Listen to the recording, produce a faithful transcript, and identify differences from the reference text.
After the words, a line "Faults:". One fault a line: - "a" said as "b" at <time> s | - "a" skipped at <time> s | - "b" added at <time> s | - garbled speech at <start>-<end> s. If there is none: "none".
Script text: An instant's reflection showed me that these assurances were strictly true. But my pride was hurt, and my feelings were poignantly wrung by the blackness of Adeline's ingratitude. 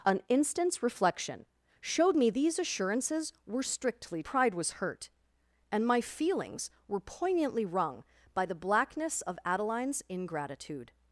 An instant's reflection showed me these assurances were strictly pride was hurt, and my feelings were poignantly wrung by the blackness of Adeline's ingratitude.
Faults:
- "that" skipped at 2.3 s
- "true But my" skipped at 4.2 s